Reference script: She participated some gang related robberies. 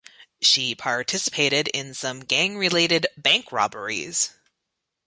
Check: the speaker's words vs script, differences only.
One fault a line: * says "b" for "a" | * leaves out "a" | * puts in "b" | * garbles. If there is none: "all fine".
* puts in "in"
* puts in "bank"